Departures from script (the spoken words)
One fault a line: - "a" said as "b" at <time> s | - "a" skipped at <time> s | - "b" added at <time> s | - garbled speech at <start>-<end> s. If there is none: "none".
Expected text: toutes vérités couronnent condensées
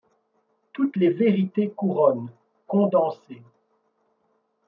- "les" added at 1.0 s